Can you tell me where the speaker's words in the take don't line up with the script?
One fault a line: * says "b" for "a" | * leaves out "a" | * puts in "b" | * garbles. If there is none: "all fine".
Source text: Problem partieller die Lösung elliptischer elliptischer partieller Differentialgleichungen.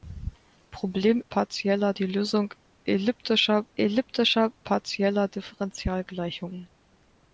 all fine